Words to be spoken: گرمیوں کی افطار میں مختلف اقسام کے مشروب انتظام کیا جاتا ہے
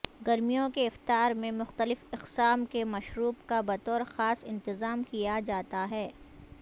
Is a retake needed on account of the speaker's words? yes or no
yes